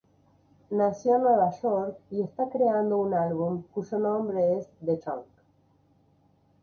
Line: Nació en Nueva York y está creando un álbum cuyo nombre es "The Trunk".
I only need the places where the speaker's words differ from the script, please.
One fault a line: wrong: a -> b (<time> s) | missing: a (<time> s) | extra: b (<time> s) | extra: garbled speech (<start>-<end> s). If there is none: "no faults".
no faults